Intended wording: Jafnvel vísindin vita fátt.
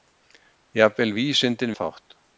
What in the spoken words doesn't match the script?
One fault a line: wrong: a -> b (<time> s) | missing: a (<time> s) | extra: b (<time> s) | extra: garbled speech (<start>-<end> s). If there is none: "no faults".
missing: vita (1.7 s)